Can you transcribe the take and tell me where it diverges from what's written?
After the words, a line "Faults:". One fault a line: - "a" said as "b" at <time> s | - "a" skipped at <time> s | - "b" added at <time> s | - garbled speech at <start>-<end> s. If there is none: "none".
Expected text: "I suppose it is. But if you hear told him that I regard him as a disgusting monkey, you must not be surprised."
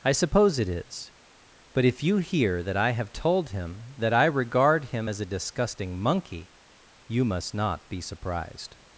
"I suppose it is. But if you hear that I have told him that I regard him as a disgusting monkey, you must not be surprised."
Faults:
- "that I have" added at 2.6 s